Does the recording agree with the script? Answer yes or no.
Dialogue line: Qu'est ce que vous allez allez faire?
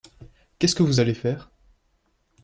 no